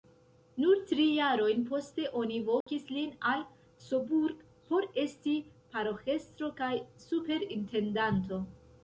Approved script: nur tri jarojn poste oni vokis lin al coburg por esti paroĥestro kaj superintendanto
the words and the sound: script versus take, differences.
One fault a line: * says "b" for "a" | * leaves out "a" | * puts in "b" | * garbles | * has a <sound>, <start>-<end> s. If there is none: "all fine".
* has a dropout, 2.6-2.7 s